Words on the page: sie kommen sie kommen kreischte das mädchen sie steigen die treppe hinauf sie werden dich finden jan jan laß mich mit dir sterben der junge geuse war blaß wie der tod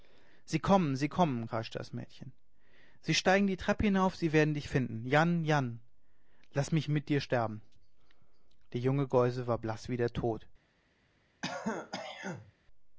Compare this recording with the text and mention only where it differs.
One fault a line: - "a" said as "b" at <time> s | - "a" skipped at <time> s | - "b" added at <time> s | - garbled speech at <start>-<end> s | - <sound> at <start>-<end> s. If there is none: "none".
- throat clearing at 11.4-12.5 s